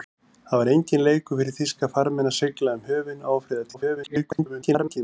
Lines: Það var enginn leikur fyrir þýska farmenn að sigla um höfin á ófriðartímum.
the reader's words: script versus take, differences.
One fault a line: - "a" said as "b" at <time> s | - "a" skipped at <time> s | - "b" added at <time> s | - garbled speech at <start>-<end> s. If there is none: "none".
- garbled speech at 3.7-5.0 s